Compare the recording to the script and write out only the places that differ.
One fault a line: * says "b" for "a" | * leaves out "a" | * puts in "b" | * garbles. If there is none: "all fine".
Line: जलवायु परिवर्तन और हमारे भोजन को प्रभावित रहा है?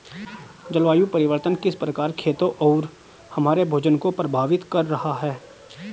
* puts in "किस प्रकार खेतों"
* puts in "कर"